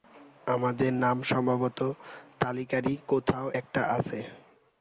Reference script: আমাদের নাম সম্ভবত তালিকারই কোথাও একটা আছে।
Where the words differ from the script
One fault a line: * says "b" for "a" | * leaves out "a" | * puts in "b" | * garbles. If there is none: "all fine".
all fine